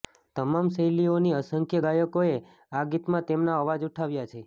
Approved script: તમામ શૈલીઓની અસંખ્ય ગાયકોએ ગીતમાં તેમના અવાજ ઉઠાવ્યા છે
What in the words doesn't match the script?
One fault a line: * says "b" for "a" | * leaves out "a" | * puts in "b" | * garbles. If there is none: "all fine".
* puts in "આ"